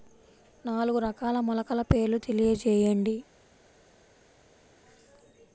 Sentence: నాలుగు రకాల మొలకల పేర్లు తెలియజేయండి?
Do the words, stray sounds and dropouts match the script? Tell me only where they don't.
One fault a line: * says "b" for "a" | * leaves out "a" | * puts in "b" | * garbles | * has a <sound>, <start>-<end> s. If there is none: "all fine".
all fine